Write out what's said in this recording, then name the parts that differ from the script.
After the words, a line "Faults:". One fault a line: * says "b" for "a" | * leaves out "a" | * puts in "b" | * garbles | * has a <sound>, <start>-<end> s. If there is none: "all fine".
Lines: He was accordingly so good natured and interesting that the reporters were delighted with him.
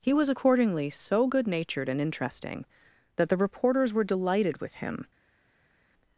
He was accordingly so good natured and interesting that the reporters were delighted with him.
Faults:
all fine